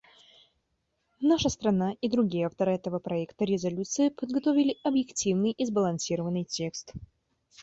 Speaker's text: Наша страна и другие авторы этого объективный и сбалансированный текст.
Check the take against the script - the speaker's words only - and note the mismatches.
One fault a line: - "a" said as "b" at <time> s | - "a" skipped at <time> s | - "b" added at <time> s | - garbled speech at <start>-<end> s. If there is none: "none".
- "проекта резолюции подготовили" added at 3.0 s